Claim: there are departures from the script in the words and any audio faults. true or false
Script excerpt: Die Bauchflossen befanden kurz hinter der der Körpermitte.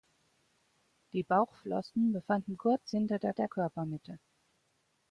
false